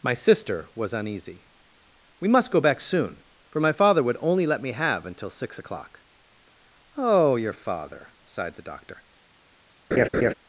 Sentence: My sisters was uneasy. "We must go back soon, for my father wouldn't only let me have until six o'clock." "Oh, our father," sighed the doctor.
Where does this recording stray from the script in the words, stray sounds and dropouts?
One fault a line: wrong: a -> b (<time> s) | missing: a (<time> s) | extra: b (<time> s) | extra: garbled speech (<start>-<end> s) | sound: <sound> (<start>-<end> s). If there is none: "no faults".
wrong: sisters -> sister (0.1 s)
wrong: wouldn't -> would (4.0 s)
wrong: our -> your (7.3 s)
sound: laugh (9.9-10.3 s)